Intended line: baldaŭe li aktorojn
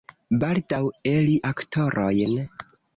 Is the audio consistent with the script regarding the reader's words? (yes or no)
yes